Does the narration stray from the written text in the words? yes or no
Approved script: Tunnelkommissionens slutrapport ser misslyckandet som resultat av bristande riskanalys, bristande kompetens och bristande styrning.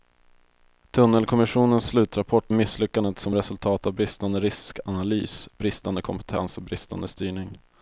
yes